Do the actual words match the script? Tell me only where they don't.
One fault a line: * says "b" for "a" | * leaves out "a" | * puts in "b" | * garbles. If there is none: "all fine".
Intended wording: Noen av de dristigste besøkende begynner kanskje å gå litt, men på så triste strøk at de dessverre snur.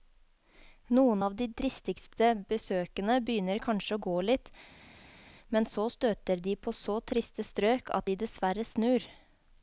* puts in "så støter de"